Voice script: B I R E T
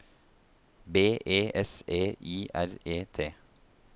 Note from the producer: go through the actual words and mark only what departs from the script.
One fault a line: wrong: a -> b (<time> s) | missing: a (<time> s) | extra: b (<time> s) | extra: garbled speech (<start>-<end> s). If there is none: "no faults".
extra: E S E (1.2 s)